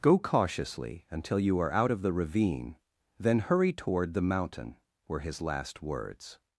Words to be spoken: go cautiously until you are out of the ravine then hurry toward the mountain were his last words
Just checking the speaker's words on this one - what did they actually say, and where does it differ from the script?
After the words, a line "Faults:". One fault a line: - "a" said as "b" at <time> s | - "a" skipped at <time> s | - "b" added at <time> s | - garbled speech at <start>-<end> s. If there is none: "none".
go cautiously until you are out of the ravine then hurry toward the mountain were his last words
Faults:
none